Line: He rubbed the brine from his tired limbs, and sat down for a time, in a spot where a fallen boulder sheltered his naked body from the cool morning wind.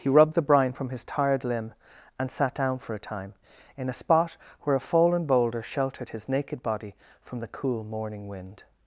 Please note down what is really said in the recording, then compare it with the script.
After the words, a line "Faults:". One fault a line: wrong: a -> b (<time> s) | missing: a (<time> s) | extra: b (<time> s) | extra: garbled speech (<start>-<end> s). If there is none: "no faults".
He rubbed the brine from his tired limb, and sat down for a time, in a spot where a fallen boulder sheltered his naked body from the cool morning wind.
Faults:
wrong: limbs -> limb (1.4 s)